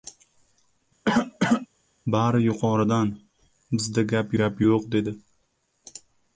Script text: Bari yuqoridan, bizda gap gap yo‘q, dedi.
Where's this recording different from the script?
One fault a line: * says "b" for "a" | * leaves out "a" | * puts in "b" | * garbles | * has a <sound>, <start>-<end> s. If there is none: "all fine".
* has a cough, 1.0-1.7 s